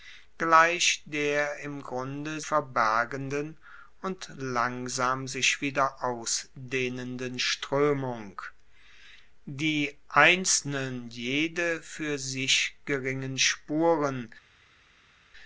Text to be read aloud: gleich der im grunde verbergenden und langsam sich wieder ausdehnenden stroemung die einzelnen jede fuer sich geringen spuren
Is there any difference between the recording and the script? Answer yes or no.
no